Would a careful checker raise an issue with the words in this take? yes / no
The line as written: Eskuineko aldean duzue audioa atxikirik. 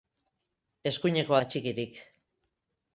yes